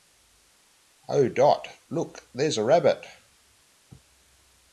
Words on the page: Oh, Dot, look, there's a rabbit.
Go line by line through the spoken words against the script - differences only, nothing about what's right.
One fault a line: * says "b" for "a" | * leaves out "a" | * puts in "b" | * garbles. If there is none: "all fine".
all fine